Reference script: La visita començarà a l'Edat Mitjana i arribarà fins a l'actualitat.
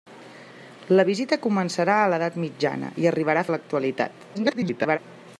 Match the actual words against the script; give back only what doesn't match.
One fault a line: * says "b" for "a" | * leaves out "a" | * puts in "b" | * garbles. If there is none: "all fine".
* leaves out "fins"
* garbles